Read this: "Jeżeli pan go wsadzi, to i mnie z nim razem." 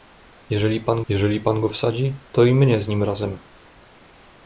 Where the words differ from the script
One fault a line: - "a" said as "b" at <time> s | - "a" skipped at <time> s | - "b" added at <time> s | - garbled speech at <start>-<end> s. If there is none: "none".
- "jeżeli pan" added at 1.1 s